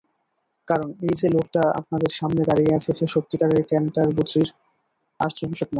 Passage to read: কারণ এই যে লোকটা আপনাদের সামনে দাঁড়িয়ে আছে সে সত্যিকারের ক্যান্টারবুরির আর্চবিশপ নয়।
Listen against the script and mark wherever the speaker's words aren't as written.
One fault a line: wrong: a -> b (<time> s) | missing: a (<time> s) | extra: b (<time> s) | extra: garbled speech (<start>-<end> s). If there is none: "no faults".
no faults